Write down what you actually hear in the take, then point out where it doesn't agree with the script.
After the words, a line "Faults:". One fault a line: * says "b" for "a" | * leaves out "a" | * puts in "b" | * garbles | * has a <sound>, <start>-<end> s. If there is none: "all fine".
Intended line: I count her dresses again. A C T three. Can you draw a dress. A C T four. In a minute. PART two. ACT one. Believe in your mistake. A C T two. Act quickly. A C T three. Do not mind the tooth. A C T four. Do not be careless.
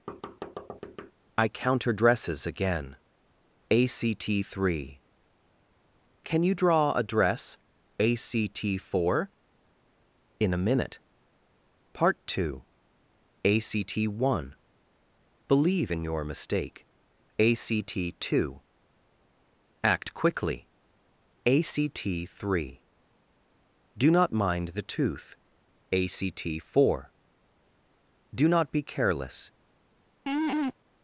I count her dresses again. A C T three. Can you draw a dress. A C T four. In a minute. PART two. ACT one. Believe in your mistake. A C T two. Act quickly. A C T three. Do not mind the tooth. A C T four. Do not be careless.
Faults:
* has a thud, 0.1-1.1 s
* has a laugh, 30.3-30.7 s